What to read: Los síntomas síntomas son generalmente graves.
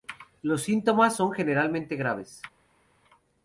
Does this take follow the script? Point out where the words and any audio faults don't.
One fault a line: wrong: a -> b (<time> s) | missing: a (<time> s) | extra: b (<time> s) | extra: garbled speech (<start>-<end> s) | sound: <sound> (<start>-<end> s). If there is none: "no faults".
missing: síntomas (1.1 s)